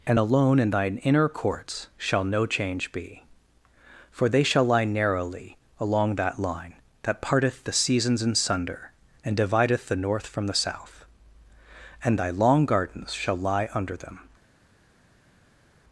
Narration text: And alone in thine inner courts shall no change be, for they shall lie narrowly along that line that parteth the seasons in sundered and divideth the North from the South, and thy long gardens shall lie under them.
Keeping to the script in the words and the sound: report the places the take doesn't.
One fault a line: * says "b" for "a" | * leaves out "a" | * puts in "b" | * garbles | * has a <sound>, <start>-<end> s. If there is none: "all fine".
* says "sunder" for "sundered"